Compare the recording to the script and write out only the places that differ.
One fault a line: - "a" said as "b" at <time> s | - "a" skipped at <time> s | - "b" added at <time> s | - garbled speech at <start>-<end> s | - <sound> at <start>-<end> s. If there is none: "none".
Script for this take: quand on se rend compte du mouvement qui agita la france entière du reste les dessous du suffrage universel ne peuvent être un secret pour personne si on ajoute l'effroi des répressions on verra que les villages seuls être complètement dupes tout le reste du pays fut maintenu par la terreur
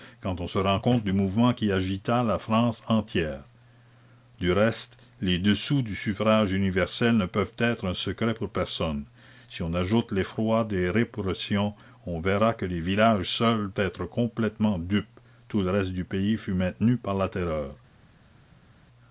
none